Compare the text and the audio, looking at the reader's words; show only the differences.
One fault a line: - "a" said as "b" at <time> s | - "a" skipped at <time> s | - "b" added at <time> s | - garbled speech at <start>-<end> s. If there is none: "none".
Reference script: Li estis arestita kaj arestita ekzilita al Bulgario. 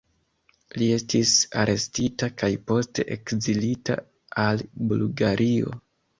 - "arestita" said as "poste" at 2.7 s